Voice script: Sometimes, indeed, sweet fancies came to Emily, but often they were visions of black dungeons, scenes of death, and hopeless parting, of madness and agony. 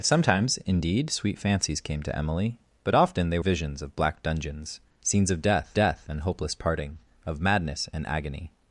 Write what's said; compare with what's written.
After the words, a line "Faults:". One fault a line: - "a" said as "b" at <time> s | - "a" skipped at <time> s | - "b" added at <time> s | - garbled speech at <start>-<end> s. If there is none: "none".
Sometimes, indeed, sweet fancies came to Emily, but often they visions of black dungeons, scenes of death death, and hopeless parting, of madness and agony.
Faults:
- "were" skipped at 3.4 s
- "death" added at 5.7 s